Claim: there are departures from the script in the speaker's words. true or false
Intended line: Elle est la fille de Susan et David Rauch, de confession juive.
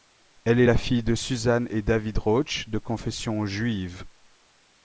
false